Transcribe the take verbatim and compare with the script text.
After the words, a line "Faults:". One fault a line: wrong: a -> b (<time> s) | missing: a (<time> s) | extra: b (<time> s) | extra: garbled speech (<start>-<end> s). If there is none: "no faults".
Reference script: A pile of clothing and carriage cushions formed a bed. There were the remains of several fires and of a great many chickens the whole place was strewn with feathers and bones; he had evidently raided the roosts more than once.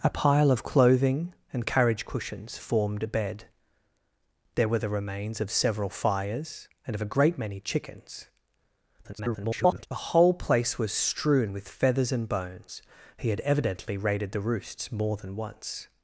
A pile of clothing and carriage cushions formed a bed. There were the remains of several fires and of a great many chickens [garbled] the whole place was strewn with feathers and bones; he had evidently raided the roosts more than once.
Faults:
extra: garbled speech (9.0-9.9 s)